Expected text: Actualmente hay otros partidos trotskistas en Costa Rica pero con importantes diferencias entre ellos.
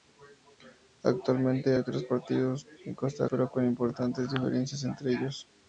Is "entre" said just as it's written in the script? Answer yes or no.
yes